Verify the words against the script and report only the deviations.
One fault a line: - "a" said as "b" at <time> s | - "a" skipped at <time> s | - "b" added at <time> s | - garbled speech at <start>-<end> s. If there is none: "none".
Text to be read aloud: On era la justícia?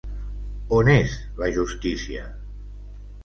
- "era" said as "és" at 0.9 s